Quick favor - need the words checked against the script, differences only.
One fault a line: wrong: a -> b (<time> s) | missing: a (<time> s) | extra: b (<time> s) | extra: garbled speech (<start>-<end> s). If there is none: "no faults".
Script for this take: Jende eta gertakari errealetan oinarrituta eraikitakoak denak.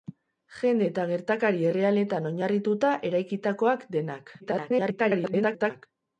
extra: garbled speech (4.4-5.9 s)